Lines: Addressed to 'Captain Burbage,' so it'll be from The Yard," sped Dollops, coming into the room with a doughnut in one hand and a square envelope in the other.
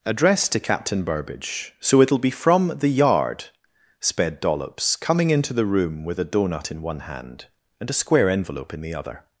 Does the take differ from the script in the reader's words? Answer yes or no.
no